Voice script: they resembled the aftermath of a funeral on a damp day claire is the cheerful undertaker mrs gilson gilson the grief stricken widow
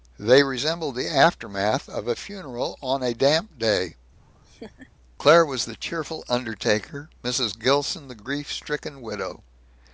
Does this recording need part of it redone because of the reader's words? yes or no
yes